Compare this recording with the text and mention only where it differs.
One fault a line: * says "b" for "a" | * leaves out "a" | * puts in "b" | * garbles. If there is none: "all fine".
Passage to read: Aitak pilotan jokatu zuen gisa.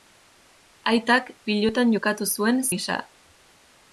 all fine